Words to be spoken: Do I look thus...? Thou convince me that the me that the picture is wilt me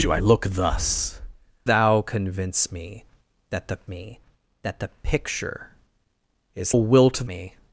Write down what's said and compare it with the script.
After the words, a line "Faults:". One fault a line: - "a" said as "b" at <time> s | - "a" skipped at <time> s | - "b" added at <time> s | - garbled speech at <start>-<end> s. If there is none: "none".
Do I look thus...? Thou convince me that the me that the picture is wilt me
Faults:
none